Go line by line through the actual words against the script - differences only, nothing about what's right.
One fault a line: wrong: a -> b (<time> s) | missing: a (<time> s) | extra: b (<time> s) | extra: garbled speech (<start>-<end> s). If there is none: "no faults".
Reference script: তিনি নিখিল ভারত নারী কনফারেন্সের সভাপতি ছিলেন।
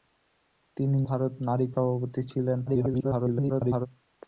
missing: নিখিল (1.0 s)
missing: কনফারেন্সের (1.7 s)
extra: garbled speech (2.7-3.9 s)